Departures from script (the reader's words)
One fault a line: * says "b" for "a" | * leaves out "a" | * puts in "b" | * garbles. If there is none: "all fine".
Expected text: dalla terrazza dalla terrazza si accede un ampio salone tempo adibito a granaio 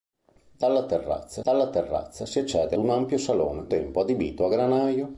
all fine